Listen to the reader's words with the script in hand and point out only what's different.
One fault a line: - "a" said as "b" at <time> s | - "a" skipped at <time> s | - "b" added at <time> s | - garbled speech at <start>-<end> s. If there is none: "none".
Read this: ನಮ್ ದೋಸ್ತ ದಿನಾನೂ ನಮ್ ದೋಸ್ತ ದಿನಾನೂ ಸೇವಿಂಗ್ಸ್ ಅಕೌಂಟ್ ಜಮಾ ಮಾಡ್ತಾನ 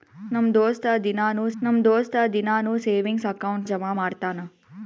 none